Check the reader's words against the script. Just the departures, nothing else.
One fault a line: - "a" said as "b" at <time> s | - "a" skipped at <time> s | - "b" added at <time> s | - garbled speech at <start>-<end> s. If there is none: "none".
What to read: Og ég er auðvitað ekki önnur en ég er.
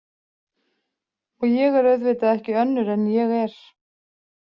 none